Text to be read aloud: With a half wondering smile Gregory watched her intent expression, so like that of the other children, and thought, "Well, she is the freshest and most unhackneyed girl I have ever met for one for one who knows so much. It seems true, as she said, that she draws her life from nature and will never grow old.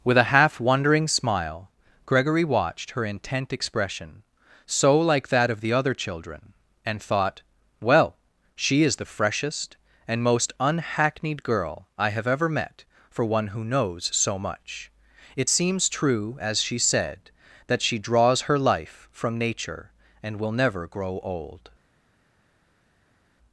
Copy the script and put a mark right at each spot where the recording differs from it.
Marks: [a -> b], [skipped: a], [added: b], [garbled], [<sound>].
With a half wondering smile Gregory watched her intent expression, so like that of the other children, and thought, "Well, she is the freshest and most unhackneyed girl I have ever met for one [skipped: for one] who knows so much. It seems true, as she said, that she draws her life from nature and will never grow old.